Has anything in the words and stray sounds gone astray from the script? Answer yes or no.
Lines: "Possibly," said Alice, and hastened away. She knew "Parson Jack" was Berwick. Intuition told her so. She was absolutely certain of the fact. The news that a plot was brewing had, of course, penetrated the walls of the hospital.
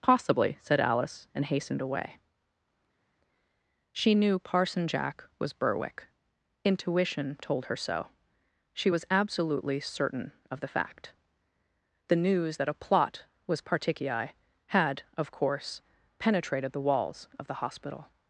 yes